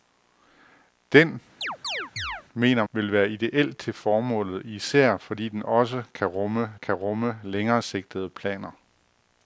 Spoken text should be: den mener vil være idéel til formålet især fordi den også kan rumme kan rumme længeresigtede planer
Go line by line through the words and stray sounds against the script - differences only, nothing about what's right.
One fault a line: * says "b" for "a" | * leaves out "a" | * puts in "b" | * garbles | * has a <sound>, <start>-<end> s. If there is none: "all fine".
* has a chirp, 1.6-2.4 s